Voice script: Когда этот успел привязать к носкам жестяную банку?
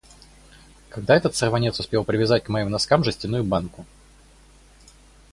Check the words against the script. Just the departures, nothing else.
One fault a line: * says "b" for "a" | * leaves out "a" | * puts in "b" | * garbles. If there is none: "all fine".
* puts in "сорванец"
* puts in "моим"